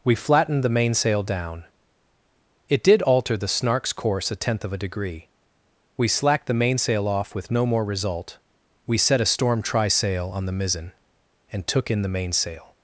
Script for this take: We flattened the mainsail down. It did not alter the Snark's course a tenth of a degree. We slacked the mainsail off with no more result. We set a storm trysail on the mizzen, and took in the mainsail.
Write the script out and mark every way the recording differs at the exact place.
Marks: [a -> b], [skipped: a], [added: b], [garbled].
We flattened the mainsail down. It did [skipped: not] alter the Snark's course a tenth of a degree. We slacked the mainsail off with no more result. We set a storm trysail on the mizzen, and took in the mainsail.